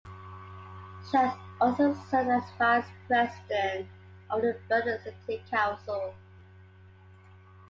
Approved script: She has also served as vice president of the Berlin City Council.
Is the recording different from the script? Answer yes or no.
no